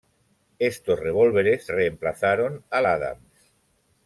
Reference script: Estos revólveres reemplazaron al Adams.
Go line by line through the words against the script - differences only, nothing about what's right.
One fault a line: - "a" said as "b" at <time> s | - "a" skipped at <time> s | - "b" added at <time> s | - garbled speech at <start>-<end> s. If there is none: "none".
none